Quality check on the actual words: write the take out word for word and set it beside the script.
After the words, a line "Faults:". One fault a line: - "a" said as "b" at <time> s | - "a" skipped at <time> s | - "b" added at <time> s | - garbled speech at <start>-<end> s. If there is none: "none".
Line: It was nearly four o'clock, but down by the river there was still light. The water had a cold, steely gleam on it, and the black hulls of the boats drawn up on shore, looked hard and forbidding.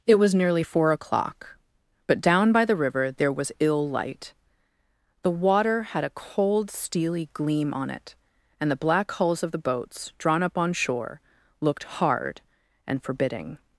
It was nearly four o'clock, but down by the river there was ill light. The water had a cold, steely gleam on it, and the black hulls of the boats drawn up on shore, looked hard and forbidding.
Faults:
- "still" said as "ill" at 3.6 s